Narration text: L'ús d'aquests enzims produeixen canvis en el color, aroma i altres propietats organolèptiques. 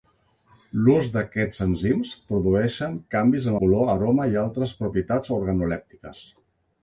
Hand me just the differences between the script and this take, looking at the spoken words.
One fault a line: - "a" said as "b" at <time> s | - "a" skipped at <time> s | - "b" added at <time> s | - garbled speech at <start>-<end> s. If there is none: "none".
- "el" skipped at 3.6 s